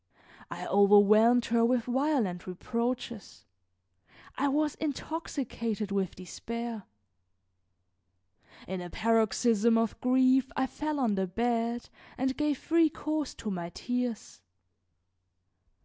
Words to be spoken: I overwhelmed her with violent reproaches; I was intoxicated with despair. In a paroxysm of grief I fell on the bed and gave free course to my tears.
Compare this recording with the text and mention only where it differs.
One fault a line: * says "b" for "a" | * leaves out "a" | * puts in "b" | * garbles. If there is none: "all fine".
all fine